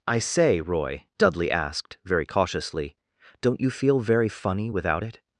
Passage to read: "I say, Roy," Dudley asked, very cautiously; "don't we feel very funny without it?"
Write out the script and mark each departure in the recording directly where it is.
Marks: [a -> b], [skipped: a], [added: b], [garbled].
"I say, Roy," Dudley asked, very cautiously; "don't [we -> you] feel very funny without it?"